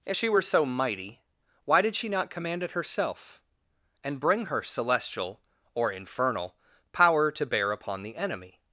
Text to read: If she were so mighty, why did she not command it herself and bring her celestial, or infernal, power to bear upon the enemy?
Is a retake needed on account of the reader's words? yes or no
no